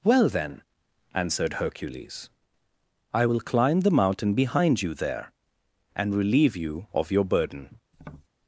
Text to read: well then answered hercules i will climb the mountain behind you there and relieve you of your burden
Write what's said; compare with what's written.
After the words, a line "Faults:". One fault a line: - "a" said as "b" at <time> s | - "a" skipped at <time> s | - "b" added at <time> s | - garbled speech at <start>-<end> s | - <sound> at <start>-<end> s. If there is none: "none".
well then answered hercules i will climb the mountain behind you there and relieve you of your burden
Faults:
- tap at 7.9-8.3 s